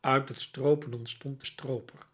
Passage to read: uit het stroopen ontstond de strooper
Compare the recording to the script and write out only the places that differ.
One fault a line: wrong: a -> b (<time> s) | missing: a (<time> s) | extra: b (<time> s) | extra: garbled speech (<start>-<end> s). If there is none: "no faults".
no faults